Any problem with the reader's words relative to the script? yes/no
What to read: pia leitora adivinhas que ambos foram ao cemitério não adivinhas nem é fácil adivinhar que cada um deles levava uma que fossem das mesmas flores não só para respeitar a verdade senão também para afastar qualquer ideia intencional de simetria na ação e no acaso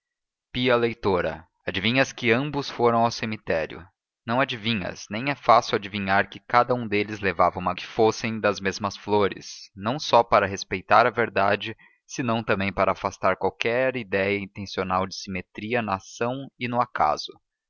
no